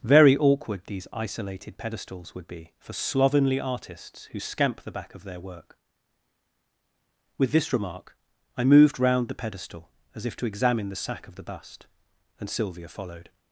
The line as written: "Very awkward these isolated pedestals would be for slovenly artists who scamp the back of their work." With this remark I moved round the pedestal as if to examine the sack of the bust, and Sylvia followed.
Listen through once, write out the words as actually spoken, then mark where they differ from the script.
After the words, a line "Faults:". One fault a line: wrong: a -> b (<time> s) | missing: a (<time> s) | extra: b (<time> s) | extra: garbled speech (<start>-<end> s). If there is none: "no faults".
"Very awkward these isolated pedestals would be for slovenly artists who scamp the back of their work." With this remark I moved round the pedestal as if to examine the sack of the bust, and Sylvia followed.
Faults:
no faults